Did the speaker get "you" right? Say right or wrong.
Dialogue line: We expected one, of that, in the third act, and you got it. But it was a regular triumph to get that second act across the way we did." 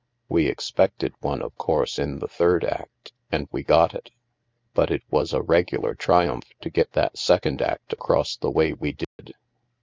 wrong